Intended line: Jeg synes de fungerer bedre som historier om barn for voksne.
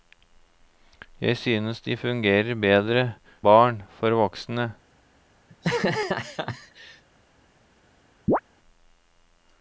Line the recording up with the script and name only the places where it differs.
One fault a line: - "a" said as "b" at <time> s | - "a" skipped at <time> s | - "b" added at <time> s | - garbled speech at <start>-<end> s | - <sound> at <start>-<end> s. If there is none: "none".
- "som historier om" skipped at 3.1 s
- laugh at 5.5-7.0 s
- chirp at 8.3-8.4 s